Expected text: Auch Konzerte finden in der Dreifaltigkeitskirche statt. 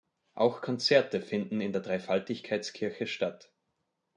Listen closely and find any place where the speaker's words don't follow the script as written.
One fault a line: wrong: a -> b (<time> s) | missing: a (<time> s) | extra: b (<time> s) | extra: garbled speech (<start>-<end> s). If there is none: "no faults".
no faults